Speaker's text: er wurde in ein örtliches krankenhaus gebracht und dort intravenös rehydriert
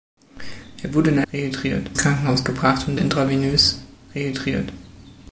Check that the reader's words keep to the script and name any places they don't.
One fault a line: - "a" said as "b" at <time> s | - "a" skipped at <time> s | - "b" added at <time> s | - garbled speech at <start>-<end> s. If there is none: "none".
- "örtliches" said as "rehydriert" at 1.3 s
- "dort" skipped at 3.0 s